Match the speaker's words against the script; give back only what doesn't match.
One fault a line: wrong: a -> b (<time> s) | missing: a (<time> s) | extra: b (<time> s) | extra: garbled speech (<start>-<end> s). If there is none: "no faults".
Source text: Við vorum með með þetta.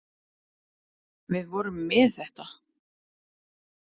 missing: með (2.1 s)